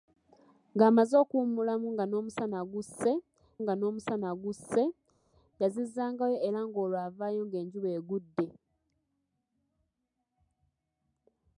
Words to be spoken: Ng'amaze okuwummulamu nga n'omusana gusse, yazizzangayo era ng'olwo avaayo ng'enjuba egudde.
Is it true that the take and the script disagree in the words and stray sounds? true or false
true